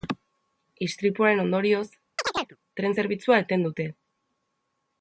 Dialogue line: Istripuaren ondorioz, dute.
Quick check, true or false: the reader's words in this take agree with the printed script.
false